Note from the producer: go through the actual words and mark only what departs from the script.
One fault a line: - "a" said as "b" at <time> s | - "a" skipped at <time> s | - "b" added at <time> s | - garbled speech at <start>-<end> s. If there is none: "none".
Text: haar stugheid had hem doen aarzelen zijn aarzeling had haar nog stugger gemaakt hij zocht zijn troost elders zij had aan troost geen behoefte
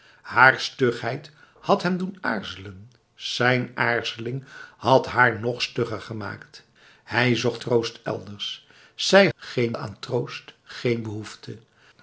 - "zijn" skipped at 7.6 s
- "had" said as "geen" at 9.3 s